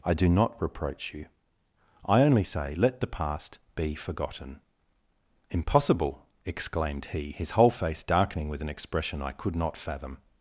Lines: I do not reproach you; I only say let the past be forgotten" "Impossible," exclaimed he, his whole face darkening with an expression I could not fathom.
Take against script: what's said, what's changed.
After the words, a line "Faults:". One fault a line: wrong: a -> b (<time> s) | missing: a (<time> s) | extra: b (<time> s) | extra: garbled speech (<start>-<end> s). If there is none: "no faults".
I do not reproach you; I only say let the past be forgotten" "Impossible," exclaimed he, his whole face darkening with an expression I could not fathom.
Faults:
no faults